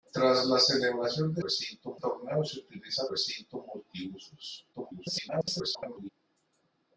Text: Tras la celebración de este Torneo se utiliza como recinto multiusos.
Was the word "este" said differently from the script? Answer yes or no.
yes